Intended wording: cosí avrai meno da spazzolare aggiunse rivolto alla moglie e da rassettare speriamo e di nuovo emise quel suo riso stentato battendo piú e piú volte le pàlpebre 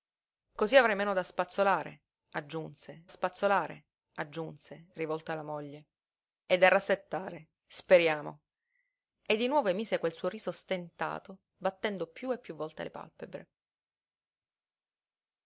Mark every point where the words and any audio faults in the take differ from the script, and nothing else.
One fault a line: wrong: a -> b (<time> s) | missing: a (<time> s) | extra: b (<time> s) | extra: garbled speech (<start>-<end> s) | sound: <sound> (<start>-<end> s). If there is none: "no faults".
extra: spazzolare aggiunse (3.1 s)